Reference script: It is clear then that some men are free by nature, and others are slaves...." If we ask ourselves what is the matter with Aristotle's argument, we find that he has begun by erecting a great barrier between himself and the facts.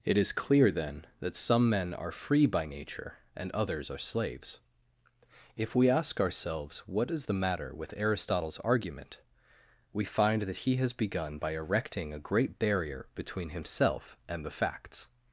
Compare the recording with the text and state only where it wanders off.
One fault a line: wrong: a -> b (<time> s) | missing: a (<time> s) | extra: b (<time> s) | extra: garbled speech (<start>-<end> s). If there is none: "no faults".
no faults